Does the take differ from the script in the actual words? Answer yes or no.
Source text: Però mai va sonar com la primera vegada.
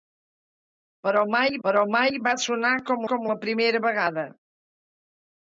yes